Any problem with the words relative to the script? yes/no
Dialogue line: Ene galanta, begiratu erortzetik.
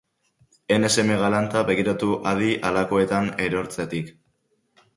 yes